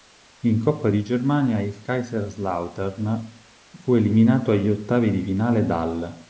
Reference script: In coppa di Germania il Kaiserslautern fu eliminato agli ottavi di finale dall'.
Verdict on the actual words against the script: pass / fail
pass